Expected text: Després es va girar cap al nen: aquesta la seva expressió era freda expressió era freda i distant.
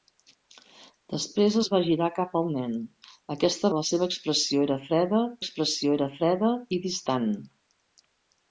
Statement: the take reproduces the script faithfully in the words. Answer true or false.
true